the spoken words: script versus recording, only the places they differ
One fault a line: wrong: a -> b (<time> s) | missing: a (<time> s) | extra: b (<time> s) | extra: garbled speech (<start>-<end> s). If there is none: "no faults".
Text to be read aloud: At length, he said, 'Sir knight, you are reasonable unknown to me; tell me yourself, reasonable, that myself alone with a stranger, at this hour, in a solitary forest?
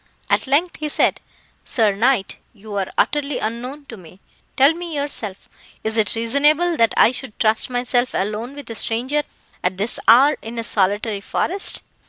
wrong: reasonable -> utterly (3.0 s)
extra: is it (5.8 s)
extra: I should trust (6.9 s)